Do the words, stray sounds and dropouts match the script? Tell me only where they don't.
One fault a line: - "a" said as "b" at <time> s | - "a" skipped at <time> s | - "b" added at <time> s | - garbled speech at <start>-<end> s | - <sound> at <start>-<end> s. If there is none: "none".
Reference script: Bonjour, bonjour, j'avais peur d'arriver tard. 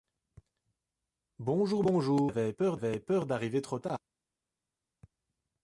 - "trop" added at 3.6 s